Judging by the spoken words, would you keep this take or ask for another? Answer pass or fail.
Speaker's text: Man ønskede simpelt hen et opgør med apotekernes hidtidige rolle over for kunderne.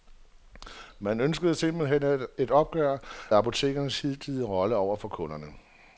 fail